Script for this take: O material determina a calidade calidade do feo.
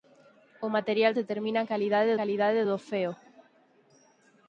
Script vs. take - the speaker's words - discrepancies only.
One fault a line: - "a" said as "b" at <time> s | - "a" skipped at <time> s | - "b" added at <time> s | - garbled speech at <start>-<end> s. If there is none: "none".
none